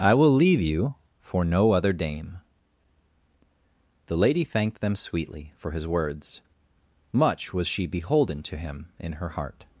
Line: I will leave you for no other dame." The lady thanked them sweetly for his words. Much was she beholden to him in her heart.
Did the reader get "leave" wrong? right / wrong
right